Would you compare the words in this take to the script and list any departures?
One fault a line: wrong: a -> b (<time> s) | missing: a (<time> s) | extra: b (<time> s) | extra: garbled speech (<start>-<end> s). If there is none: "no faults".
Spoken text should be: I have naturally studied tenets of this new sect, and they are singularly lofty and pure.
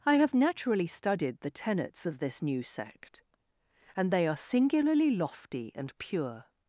extra: the (1.4 s)